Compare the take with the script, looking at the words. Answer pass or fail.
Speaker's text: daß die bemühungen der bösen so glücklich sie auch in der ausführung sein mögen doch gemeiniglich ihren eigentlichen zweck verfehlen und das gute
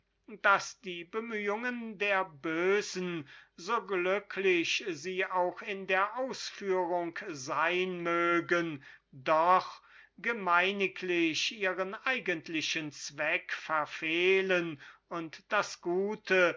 pass